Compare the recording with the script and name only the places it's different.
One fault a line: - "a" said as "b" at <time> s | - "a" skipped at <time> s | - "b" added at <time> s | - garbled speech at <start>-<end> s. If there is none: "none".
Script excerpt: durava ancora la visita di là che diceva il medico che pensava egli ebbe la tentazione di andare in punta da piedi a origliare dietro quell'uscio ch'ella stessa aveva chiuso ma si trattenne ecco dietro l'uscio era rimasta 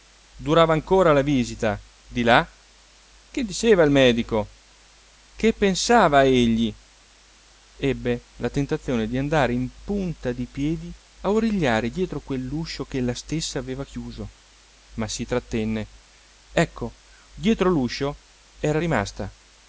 - "da" said as "di" at 10.3 s